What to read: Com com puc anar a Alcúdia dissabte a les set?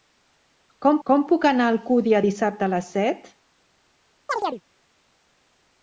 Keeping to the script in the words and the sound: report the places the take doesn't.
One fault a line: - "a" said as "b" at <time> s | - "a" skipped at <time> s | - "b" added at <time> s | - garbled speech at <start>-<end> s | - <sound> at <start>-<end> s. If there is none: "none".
- chirp at 4.3-4.6 s